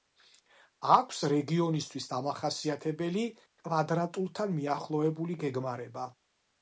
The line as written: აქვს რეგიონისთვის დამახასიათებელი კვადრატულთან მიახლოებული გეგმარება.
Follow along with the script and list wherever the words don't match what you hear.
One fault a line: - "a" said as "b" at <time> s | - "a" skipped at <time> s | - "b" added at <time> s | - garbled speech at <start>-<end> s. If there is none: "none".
none